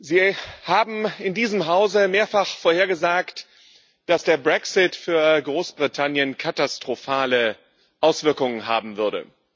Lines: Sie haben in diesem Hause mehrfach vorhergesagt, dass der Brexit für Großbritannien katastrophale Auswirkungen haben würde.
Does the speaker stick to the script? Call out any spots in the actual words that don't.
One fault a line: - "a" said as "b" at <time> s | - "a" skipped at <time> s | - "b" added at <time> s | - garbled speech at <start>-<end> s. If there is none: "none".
none